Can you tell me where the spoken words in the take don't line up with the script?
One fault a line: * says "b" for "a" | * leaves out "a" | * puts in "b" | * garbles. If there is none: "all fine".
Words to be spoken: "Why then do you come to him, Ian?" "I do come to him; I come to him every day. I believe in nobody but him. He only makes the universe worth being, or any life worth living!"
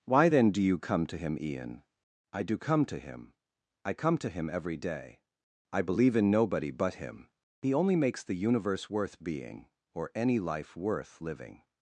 all fine